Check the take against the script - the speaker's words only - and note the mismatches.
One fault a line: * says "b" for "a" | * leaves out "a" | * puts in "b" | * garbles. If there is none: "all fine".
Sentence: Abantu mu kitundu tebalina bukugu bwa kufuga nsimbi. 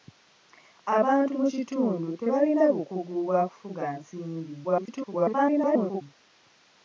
* garbles